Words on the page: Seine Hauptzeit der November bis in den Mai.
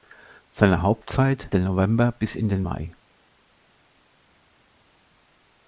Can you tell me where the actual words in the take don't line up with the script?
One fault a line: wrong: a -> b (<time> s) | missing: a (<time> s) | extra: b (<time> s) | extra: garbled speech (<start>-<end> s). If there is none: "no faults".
no faults